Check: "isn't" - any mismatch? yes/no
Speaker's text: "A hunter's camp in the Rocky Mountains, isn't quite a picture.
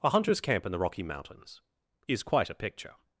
yes